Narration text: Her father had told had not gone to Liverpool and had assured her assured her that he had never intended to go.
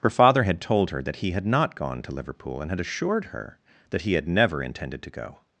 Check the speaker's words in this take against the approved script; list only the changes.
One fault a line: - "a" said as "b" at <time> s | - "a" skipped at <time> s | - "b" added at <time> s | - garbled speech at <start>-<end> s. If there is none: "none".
- "her that he" added at 0.9 s
- "assured her" skipped at 3.6 s